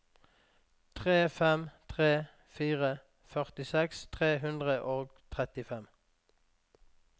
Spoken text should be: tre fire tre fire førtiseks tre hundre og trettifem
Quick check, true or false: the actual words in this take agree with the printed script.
false